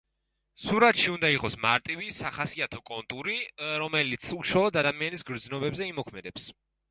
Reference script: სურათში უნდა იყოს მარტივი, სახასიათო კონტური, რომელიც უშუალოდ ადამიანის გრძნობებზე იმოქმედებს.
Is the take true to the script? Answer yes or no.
yes